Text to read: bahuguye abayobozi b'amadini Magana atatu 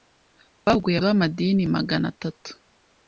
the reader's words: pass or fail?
fail